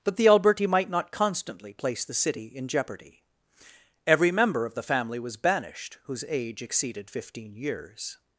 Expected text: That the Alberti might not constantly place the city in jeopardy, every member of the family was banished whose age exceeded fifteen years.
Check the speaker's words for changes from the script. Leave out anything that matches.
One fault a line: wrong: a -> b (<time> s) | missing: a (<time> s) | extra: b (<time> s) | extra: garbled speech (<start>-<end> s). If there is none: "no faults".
wrong: That -> But (0.0 s)